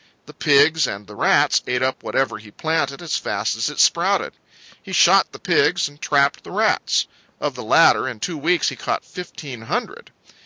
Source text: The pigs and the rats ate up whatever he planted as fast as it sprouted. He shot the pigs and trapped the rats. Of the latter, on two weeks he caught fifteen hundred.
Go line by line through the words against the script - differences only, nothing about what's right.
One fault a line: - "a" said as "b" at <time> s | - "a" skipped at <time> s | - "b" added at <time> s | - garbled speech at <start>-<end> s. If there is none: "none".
- "on" said as "in" at 8.1 s